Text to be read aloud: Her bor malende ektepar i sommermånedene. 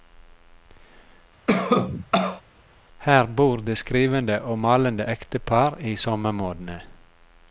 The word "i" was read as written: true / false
true